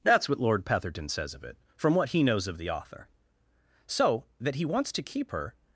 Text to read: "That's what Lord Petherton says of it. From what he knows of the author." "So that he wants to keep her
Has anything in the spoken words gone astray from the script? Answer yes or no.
no